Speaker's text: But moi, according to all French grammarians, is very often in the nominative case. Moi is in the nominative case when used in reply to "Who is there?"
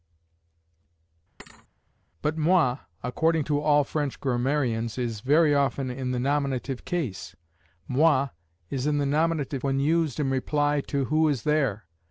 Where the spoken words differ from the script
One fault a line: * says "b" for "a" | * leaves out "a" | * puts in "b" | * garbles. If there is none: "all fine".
* leaves out "case"